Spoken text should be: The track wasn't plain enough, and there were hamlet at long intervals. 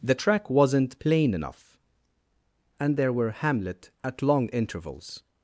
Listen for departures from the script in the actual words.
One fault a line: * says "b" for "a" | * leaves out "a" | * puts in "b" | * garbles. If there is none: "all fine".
all fine